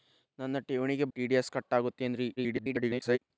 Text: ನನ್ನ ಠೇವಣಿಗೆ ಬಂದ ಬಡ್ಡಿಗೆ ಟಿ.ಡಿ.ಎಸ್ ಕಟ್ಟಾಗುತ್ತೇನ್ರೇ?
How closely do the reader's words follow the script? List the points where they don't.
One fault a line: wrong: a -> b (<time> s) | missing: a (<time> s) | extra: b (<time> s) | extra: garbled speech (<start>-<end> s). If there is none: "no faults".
missing: ಬಂದ ಬಡ್ಡಿಗೆ (1.1 s)
extra: garbled speech (2.4-3.2 s)